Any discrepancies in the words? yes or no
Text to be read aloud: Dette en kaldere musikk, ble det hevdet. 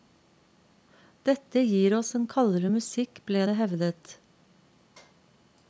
yes